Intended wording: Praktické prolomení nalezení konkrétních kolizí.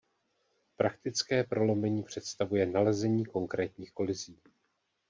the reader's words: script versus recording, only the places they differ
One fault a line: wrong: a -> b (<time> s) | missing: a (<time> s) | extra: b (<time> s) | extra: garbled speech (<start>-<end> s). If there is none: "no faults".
extra: představuje (2.0 s)